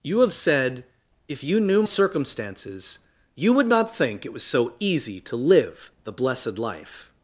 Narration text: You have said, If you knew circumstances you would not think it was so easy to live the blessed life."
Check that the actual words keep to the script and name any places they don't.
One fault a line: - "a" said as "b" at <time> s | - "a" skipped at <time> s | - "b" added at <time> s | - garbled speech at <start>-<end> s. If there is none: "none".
none